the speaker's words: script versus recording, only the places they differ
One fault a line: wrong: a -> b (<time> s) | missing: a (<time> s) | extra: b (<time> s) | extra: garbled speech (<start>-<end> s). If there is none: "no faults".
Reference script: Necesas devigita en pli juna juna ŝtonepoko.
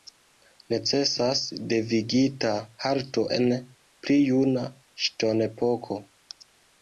extra: halto (2.9 s)
missing: juna (4.6 s)